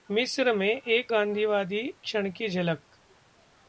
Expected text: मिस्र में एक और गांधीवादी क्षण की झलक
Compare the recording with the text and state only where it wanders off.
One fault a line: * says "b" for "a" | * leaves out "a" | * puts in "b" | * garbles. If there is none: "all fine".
* leaves out "और"